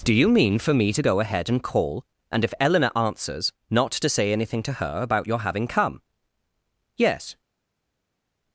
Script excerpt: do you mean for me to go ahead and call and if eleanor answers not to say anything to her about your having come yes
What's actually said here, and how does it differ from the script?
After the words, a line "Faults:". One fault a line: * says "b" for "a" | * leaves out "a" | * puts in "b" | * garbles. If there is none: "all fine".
do you mean for me to go ahead and call and if eleanor answers not to say anything to her about your having come yes
Faults:
all fine